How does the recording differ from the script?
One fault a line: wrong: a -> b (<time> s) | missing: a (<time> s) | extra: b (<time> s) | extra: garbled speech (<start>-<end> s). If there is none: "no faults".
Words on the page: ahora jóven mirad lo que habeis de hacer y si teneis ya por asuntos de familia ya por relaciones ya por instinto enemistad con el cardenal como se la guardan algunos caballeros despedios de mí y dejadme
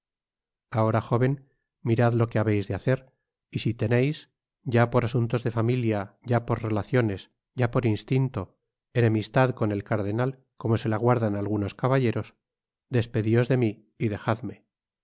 no faults